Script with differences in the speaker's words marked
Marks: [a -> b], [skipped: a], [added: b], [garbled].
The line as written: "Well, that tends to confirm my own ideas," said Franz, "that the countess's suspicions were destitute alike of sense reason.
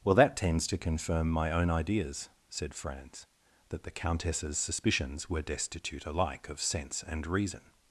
"Well, that tends to confirm my own ideas," said Franz, "that the countess's suspicions were destitute alike of sense [added: and] reason.